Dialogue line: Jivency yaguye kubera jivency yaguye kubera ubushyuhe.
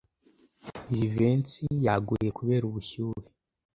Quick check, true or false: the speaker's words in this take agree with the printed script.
false